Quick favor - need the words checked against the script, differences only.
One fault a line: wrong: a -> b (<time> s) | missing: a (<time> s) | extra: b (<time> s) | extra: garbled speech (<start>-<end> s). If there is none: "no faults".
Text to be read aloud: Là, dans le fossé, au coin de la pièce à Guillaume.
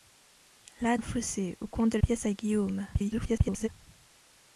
missing: dans (1.0 s)
missing: la (2.0 s)
extra: garbled speech (2.9-3.7 s)